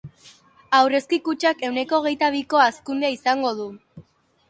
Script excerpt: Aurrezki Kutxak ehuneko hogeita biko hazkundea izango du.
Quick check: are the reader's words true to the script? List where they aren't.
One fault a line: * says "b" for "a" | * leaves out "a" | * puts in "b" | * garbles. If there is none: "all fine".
all fine